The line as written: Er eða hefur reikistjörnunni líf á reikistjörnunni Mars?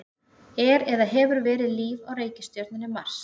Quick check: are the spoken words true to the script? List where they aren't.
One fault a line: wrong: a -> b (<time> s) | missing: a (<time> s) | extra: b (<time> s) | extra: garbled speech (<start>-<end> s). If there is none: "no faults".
wrong: reikistjörnunni -> verið (1.5 s)